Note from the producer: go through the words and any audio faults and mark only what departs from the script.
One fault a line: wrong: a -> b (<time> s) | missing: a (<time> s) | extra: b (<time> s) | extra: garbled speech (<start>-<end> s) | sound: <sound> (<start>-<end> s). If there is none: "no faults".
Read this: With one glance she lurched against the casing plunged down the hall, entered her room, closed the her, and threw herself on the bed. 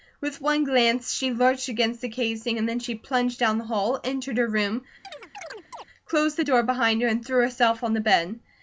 extra: and then she (2.6 s)
sound: chirp (5.0-5.8 s)
extra: door behind (6.4 s)